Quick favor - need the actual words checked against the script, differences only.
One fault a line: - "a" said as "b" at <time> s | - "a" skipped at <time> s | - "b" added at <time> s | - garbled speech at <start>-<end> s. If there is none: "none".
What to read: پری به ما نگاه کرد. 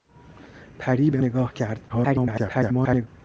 - "ما" skipped at 1.2 s
- garbled speech at 1.9-3.1 s